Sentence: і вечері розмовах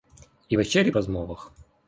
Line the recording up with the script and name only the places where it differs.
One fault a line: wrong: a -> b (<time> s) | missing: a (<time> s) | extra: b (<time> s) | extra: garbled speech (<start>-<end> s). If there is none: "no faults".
no faults